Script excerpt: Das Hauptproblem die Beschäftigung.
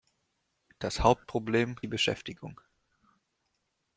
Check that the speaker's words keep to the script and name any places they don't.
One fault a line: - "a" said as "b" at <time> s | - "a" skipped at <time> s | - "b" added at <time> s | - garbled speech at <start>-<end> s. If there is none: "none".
none